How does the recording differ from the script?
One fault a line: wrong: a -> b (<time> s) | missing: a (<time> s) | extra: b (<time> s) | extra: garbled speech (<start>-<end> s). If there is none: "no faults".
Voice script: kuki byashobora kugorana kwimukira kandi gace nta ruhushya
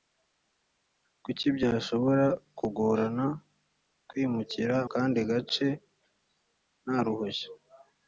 no faults